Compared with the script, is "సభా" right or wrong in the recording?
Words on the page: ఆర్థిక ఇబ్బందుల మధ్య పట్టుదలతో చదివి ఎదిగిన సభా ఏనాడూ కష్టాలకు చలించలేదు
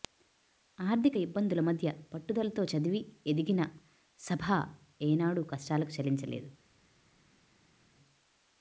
right